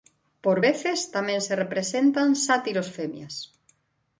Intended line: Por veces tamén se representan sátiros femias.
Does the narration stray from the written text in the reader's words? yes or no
no